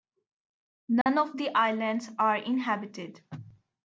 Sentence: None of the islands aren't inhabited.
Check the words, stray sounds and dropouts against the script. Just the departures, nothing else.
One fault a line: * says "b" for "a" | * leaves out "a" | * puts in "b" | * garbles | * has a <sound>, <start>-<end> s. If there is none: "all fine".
* has a dropout, 1.0-1.1 s
* says "are" for "aren't"